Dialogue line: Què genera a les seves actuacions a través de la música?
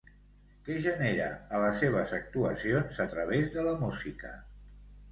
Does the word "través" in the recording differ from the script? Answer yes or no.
no